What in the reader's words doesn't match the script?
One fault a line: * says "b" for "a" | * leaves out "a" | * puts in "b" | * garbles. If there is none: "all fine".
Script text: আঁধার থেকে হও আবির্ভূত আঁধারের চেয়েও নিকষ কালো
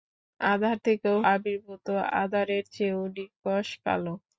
* leaves out "হও"